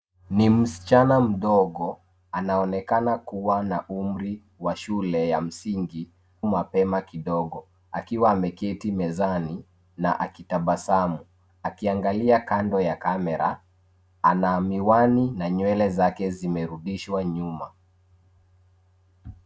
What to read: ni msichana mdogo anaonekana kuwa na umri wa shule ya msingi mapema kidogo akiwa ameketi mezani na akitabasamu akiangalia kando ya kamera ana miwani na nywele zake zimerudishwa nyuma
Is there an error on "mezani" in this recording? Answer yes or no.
no